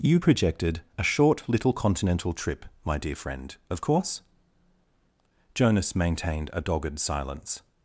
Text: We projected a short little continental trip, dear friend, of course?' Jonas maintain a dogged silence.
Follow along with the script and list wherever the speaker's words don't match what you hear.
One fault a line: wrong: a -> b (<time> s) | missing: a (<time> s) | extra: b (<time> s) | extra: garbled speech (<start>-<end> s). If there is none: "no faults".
wrong: We -> You (0.0 s)
extra: my (2.8 s)
wrong: maintain -> maintained (5.9 s)